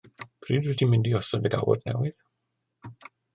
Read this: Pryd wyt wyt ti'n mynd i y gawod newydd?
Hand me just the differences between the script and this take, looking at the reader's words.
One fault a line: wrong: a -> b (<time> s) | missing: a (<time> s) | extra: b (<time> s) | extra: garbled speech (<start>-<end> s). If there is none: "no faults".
missing: wyt (0.8 s)
extra: osod (1.2 s)